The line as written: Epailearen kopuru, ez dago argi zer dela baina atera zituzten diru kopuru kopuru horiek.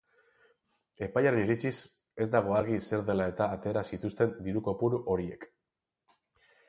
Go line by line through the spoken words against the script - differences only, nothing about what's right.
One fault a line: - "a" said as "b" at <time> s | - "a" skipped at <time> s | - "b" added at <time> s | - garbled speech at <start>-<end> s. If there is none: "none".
- "kopuru" said as "iritziz" at 1.4 s
- "baina" said as "eta" at 3.3 s
- "kopuru" skipped at 5.0 s